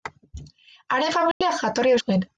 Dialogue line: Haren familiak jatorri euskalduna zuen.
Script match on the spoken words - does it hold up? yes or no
no